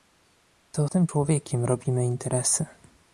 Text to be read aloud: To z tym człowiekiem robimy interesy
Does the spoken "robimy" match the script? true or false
true